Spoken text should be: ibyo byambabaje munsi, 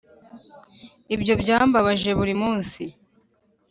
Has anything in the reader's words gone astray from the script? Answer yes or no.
yes